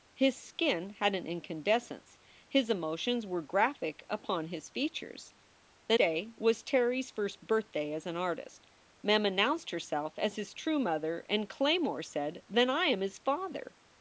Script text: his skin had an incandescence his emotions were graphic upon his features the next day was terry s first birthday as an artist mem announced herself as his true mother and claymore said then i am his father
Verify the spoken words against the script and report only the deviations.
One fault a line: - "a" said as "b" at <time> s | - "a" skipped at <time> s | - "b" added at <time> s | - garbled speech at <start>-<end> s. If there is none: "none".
- "next" skipped at 6.0 s